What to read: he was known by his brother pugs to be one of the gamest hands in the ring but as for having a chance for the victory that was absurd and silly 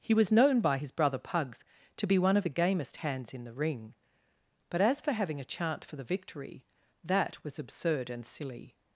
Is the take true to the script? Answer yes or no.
no